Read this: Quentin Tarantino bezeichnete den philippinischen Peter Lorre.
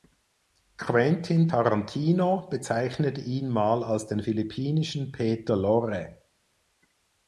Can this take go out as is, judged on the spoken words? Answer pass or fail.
fail